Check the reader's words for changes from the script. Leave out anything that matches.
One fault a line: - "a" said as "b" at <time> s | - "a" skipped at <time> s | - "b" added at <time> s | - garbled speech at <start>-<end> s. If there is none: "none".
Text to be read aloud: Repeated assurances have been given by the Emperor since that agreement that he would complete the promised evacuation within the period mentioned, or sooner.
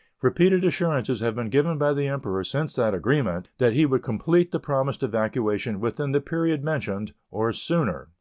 none